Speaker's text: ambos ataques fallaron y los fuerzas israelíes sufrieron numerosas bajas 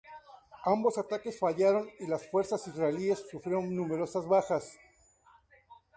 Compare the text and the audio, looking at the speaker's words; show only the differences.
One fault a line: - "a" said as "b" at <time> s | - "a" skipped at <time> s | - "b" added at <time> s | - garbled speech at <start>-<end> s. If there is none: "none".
- "los" said as "las" at 2.1 s